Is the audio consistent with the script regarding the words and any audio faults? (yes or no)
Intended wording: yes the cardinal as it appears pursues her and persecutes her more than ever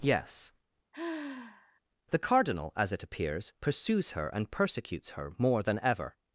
no